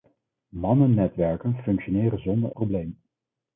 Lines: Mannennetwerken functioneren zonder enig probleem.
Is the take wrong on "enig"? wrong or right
wrong